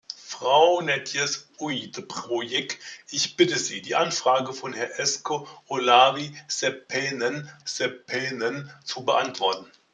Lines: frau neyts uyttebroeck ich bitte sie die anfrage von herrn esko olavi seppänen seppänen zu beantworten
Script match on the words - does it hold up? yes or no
yes